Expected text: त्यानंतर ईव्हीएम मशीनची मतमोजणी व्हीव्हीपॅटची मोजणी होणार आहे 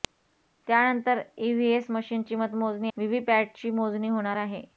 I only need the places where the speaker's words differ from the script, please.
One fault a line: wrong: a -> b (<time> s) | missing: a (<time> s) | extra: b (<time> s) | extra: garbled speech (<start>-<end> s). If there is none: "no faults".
no faults